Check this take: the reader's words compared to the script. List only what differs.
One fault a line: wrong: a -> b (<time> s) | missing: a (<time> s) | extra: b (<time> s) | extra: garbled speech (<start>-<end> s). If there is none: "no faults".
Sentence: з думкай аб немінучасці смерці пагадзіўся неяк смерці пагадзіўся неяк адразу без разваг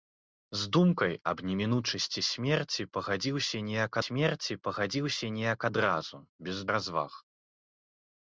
no faults